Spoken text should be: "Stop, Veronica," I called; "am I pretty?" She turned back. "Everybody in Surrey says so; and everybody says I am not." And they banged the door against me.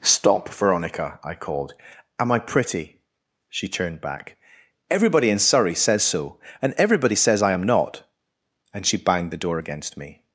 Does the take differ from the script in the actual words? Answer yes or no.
yes